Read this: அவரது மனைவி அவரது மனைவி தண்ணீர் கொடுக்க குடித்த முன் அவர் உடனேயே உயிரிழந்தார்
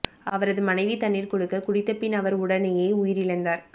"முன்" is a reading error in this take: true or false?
true